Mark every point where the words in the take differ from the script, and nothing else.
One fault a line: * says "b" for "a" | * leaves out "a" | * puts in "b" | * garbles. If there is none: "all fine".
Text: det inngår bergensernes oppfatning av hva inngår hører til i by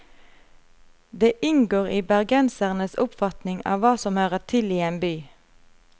* puts in "i"
* says "som" for "inngår"
* puts in "en"